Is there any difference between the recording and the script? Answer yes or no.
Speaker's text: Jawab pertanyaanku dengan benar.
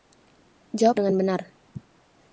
yes